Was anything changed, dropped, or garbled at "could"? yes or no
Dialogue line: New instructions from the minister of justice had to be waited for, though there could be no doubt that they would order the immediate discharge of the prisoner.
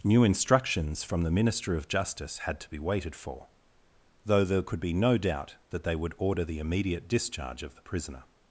no